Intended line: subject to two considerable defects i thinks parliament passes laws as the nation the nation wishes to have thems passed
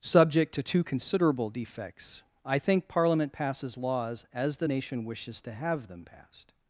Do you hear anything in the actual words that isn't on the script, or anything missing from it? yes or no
yes